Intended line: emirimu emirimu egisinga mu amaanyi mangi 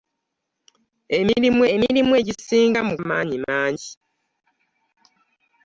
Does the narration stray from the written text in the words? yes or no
no